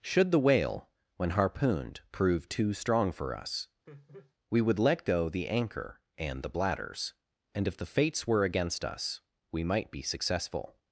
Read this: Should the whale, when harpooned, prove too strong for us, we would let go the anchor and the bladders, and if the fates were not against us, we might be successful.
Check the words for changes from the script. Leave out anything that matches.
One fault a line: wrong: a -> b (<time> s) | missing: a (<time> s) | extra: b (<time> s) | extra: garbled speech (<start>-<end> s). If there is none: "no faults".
missing: not (8.4 s)